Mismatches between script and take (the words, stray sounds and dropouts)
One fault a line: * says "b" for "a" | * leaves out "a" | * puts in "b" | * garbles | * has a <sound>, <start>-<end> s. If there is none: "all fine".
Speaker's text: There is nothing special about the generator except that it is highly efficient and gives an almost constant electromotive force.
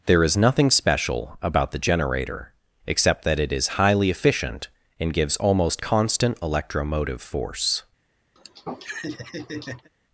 * leaves out "an"
* has a laugh, 8.4-9.9 s